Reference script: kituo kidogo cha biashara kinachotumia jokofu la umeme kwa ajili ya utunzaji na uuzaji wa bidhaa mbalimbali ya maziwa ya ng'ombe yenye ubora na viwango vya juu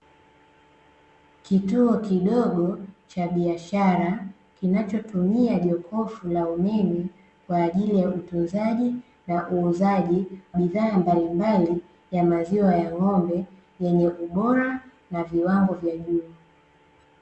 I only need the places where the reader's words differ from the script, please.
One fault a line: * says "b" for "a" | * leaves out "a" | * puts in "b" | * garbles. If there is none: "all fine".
* leaves out "wa"